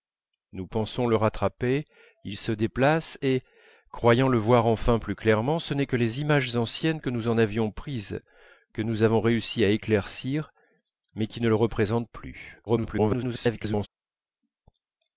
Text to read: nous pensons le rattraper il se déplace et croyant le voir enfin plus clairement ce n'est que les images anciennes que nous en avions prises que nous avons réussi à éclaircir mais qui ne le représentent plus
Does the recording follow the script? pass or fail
fail